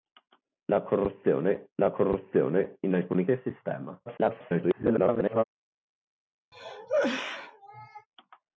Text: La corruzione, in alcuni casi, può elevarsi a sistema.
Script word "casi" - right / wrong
wrong